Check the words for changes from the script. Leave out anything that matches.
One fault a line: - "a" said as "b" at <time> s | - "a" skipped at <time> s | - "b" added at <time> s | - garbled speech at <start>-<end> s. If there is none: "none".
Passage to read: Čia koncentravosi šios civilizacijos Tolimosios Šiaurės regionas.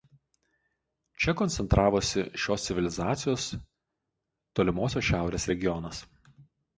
none